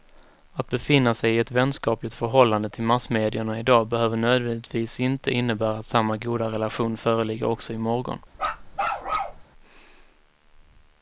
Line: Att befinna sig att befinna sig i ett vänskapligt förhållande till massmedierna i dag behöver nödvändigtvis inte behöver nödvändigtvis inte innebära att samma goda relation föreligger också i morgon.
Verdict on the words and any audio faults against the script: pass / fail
fail